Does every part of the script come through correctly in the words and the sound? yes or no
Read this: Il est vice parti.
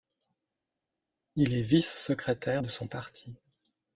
no